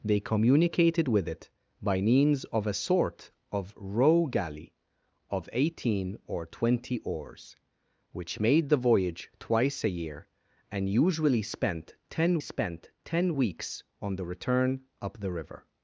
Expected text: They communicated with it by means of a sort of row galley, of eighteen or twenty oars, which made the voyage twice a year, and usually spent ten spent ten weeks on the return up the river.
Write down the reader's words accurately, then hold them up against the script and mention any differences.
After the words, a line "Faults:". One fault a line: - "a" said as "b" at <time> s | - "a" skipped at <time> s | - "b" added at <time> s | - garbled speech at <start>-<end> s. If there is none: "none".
They communicated with it by means of a sort of row galley, of eighteen or twenty oars, which made the voyage twice a year, and usually spent ten spent ten weeks on the return up the river.
Faults:
none